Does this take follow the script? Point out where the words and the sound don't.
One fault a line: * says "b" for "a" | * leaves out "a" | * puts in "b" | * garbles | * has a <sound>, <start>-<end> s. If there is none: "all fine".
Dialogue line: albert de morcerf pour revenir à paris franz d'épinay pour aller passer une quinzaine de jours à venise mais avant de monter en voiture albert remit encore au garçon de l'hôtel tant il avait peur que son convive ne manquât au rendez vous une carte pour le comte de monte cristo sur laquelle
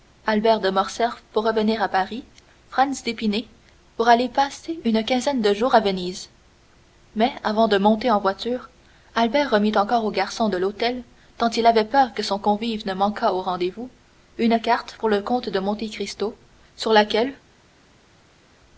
all fine